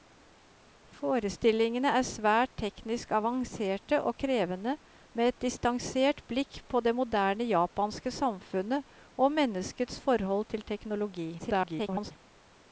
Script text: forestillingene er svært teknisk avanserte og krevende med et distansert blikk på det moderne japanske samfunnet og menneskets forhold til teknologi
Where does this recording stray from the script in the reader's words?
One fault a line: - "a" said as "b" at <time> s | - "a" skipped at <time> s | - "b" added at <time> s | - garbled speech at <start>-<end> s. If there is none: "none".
- garbled speech at 11.4-12.1 s